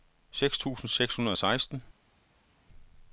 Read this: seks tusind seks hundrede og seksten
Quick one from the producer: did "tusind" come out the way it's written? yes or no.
yes